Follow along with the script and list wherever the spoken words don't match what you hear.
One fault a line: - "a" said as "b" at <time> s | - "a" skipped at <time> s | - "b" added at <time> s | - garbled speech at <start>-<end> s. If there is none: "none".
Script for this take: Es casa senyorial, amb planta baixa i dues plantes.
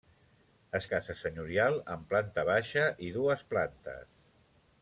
none